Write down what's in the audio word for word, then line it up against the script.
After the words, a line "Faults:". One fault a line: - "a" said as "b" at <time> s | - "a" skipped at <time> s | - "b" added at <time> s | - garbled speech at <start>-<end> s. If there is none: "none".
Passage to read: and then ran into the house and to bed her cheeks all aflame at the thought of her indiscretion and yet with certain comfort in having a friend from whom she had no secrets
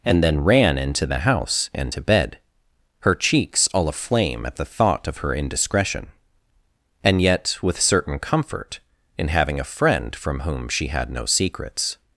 and then ran into the house and to bed her cheeks all aflame at the thought of her indiscretion and yet with certain comfort in having a friend from whom she had no secrets
Faults:
none